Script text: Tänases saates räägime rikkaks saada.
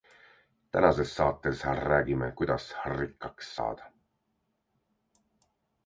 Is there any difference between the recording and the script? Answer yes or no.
yes